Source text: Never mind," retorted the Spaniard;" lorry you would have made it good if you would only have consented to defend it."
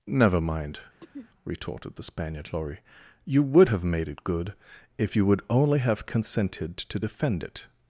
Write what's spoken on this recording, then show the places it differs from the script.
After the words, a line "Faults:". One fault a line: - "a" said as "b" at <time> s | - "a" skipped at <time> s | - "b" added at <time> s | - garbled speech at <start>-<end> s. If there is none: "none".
Never mind," retorted the Spaniard;" lorry you would have made it good if you would only have consented to defend it."
Faults:
none